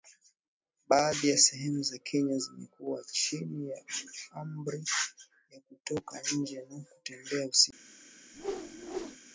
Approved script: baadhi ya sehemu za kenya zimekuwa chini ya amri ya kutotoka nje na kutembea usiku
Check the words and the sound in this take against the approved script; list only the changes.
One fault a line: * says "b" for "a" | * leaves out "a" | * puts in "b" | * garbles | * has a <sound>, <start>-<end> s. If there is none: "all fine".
* has a whoosh, 8.3-9.2 s